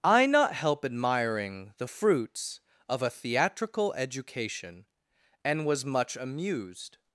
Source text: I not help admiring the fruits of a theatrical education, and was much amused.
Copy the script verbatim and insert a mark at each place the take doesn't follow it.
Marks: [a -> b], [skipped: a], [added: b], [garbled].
I not help admiring the fruits of a theatrical education, and was much amused.